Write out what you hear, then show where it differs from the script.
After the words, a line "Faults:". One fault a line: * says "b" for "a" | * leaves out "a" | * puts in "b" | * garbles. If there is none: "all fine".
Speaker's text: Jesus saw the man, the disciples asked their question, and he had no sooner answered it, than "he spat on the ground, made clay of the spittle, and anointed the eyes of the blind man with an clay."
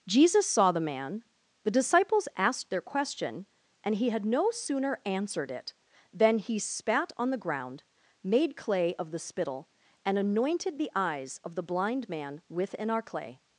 Jesus saw the man, the disciples asked their question, and he had no sooner answered it, than "he spat on the ground, made clay of the spittle, and anointed the eyes of the blind man with an clay."
Faults:
all fine